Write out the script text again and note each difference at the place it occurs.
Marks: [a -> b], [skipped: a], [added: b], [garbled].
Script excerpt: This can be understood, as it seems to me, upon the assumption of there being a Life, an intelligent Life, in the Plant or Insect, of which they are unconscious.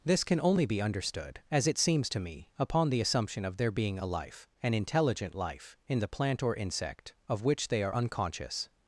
This can [added: only] be understood, as it seems to me, upon the assumption of there being a Life, an intelligent Life, in the Plant or Insect, of which they are unconscious.